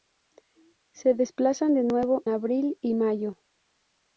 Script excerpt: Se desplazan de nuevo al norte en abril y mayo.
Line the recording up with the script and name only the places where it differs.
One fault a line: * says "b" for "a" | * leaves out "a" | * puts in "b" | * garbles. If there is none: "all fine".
* leaves out "al norte en"